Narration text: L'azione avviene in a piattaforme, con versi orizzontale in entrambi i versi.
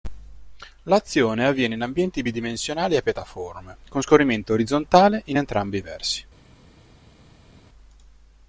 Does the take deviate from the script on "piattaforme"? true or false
false